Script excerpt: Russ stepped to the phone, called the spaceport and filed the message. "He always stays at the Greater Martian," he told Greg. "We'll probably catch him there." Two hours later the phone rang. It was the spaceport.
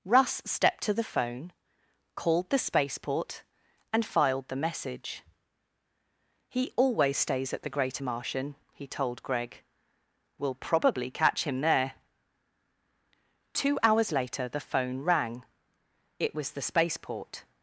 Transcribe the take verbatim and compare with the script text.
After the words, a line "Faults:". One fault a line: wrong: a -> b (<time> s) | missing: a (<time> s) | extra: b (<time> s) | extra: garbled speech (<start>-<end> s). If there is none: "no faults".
Russ stepped to the phone, called the spaceport and filed the message. "He always stays at the Greater Martian," he told Greg. "We'll probably catch him there." Two hours later the phone rang. It was the spaceport.
Faults:
no faults